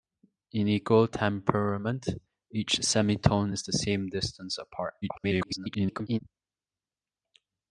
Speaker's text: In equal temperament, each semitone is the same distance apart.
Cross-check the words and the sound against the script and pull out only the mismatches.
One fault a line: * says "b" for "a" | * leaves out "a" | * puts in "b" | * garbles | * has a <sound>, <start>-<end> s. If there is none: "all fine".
* garbles